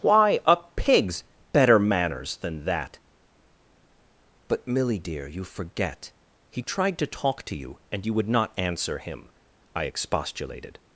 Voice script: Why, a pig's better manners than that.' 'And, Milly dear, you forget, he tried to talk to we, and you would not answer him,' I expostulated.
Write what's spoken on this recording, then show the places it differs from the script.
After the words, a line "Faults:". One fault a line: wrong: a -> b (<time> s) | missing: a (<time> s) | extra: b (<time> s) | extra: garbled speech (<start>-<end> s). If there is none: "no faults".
Why, a pig's better manners than that.' 'But, Milly dear, you forget, he tried to talk to you, and you would not answer him,' I expostulated.
Faults:
wrong: And -> But (4.5 s)
wrong: we -> you (7.5 s)